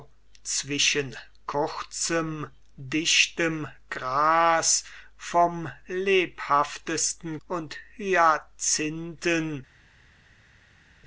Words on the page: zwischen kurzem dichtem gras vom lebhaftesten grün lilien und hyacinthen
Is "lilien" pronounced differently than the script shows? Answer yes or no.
yes